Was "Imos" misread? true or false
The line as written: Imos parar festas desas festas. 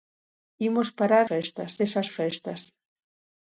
false